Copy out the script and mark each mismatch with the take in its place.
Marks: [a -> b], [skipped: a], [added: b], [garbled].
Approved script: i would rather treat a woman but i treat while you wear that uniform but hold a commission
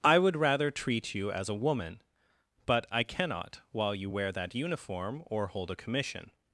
i would rather treat [added: you as] a woman but i [treat -> cannot] while you wear that uniform [but -> or] hold a commission